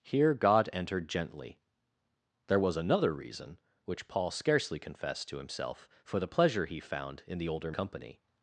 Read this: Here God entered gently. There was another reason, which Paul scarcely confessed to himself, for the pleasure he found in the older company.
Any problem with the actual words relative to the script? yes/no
no